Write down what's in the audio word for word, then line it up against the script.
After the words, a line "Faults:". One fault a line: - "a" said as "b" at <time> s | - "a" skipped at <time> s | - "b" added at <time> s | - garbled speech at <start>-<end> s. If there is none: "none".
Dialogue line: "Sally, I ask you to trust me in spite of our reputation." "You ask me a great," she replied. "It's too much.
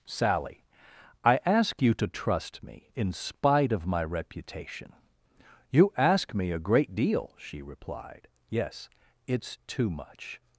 "Sally, I ask you to trust me in spite of my reputation." "You ask me a great deal," she replied. "Yes, it's too much.
Faults:
- "our" said as "my" at 3.9 s
- "deal" added at 6.9 s
- "Yes" added at 8.5 s